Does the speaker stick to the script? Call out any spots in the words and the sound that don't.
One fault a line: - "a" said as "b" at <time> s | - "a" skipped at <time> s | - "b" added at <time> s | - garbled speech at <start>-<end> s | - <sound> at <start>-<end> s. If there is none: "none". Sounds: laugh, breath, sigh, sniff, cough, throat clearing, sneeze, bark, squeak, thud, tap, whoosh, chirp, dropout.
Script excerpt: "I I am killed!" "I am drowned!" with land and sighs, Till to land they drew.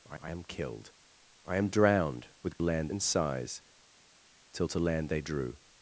none